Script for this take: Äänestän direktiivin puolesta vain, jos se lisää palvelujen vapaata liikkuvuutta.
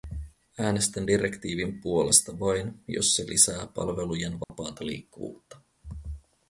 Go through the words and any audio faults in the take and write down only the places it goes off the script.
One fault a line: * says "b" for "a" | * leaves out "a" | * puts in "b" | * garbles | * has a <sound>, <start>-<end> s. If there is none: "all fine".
* has a dropout, 4.4-4.5 s